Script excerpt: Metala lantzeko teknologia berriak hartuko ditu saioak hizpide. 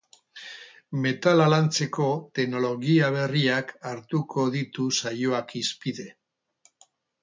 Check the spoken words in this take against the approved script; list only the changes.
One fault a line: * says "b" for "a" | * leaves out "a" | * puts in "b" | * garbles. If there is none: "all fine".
all fine